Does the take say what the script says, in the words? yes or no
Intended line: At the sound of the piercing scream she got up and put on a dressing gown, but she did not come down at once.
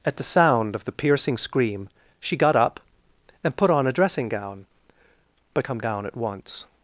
no